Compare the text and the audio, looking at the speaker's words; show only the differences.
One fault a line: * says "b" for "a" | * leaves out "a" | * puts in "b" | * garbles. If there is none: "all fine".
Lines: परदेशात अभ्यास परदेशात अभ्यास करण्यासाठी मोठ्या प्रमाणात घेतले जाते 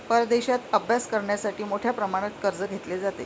* leaves out "परदेशात अभ्यास"
* puts in "कर्ज"